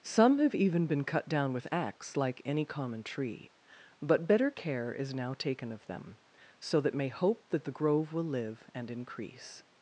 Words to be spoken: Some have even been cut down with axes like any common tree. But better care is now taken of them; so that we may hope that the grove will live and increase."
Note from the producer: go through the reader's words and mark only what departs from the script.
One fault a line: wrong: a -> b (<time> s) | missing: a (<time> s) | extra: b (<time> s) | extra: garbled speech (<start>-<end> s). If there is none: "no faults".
wrong: axes -> axe (1.7 s)
missing: we (6.9 s)